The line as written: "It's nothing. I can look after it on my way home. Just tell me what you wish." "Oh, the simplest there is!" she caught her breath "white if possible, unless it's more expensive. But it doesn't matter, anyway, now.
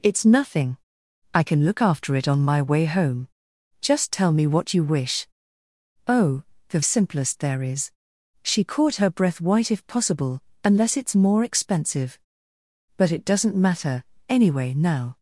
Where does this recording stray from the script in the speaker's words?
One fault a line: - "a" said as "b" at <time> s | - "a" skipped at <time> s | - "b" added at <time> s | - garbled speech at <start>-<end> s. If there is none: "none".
none